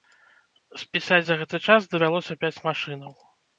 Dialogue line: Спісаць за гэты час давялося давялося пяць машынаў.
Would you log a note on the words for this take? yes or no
yes